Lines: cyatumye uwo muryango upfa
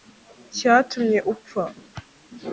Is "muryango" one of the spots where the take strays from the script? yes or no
yes